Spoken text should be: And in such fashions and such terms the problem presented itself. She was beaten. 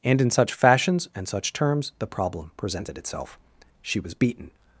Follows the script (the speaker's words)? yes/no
yes